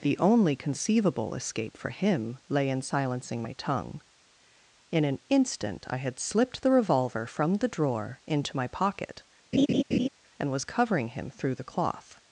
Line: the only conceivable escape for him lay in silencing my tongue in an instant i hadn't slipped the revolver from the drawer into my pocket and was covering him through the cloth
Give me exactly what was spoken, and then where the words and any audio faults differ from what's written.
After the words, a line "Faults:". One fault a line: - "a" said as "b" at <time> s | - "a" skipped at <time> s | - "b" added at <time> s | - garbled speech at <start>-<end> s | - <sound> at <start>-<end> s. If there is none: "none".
the only conceivable escape for him lay in silencing my tongue in an instant i had slipped the revolver from the drawer into my pocket and was covering him through the cloth
Faults:
- "hadn't" said as "had" at 6.0 s
- laugh at 9.5-10.1 s